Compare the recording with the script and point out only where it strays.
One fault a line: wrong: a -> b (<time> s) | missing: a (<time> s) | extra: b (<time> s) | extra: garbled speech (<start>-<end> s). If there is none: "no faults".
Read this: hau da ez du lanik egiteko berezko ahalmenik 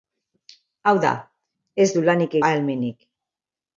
missing: egiteko berezko (2.4 s)